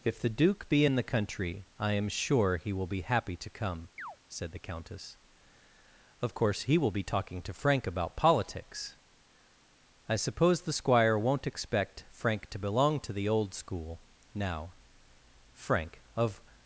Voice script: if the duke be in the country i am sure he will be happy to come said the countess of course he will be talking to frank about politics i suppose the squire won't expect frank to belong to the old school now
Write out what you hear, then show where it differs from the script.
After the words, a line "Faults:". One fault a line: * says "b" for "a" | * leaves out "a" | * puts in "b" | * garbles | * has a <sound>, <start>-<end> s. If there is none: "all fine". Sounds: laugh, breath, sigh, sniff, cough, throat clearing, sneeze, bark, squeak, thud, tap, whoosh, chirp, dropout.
if the duke be in the country i am sure he will be happy to come said the countess of course he will be talking to frank about politics i suppose the squire won't expect frank to belong to the old school now frank of
Faults:
* has a chirp, 4.0-4.2 s
* puts in "frank of"